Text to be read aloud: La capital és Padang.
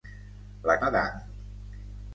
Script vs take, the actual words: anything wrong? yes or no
yes